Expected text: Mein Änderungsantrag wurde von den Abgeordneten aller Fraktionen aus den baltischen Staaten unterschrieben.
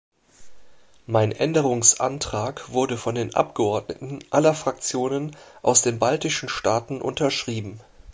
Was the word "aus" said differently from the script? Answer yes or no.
no